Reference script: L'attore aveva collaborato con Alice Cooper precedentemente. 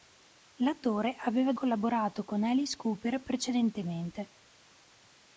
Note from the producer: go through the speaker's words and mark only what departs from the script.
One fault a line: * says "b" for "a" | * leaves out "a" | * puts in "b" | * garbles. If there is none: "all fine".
all fine